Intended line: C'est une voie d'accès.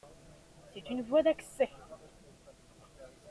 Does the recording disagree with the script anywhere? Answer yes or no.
no